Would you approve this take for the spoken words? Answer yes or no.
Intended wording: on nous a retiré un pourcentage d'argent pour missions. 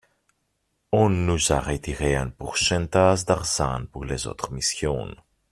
no